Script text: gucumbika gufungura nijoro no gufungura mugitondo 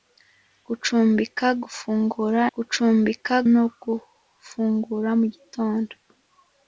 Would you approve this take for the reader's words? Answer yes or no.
no